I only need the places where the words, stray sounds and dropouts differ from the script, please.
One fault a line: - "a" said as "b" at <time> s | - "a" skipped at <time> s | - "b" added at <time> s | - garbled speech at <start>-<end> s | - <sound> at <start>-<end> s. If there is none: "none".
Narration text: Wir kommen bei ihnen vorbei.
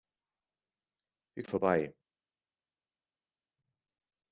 - "kommen bei ihnen" skipped at 1.4 s